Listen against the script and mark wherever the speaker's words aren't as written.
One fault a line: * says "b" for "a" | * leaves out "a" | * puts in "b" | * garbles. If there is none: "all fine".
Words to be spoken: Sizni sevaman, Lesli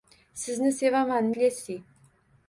all fine